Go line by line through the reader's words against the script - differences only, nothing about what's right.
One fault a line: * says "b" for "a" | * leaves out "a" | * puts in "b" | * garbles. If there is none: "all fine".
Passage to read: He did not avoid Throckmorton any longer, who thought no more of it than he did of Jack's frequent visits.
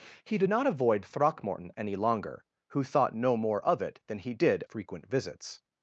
* leaves out "of Jack's"